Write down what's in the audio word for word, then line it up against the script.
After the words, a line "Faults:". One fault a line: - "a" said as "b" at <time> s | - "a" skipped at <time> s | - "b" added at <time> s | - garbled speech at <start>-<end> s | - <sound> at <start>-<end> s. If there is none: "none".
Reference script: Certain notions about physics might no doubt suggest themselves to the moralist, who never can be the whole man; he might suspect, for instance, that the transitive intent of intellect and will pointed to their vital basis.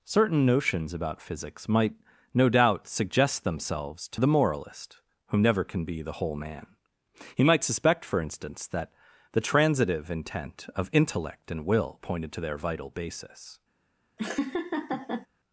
Certain notions about physics might no doubt suggest themselves to the moralist, who never can be the whole man; he might suspect, for instance, that the transitive intent of intellect and will pointed to their vital basis.
Faults:
- laugh at 14.2-15.3 s